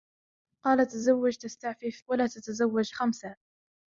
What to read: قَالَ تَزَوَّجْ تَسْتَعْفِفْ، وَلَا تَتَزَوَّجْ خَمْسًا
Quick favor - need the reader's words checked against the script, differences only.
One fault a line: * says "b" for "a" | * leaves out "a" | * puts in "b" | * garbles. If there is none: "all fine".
all fine